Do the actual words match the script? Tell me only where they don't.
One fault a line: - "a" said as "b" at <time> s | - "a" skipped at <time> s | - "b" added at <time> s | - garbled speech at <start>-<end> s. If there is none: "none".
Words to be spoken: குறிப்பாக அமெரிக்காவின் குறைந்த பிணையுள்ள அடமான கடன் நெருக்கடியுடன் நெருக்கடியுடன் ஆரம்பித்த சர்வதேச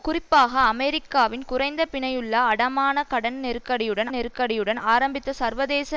none